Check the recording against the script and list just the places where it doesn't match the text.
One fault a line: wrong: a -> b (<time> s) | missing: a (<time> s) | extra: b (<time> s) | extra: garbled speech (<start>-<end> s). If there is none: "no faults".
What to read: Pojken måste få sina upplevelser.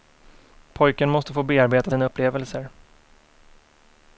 extra: bearbeta (1.4 s)